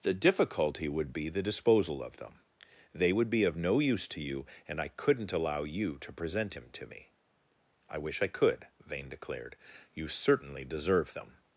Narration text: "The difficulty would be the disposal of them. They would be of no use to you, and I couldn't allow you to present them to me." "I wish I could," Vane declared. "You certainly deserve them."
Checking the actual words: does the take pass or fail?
fail